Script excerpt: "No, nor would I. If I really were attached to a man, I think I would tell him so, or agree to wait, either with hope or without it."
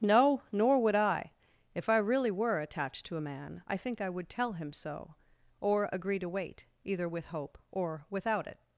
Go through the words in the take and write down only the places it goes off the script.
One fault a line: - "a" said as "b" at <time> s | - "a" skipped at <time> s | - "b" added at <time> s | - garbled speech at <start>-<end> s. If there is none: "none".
none